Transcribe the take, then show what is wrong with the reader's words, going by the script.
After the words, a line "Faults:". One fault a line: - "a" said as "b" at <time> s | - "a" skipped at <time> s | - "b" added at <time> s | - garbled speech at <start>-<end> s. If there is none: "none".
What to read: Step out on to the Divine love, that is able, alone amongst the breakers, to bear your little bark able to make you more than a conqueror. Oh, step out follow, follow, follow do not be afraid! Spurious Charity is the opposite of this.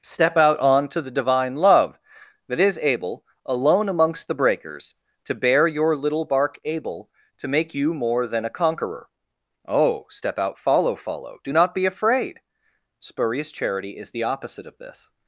Step out on to the Divine love, that is able, alone amongst the breakers, to bear your little bark able to make you more than a conqueror. Oh, step out follow, follow do not be afraid! Spurious Charity is the opposite of this.
Faults:
- "follow" skipped at 11.4 s